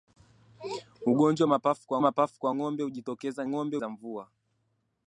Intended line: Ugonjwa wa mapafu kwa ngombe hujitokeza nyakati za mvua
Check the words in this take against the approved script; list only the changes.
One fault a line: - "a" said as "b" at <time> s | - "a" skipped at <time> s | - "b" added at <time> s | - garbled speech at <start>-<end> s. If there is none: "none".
- "mapafu kwa" added at 2.0 s
- "nyakati" said as "ngombe" at 3.5 s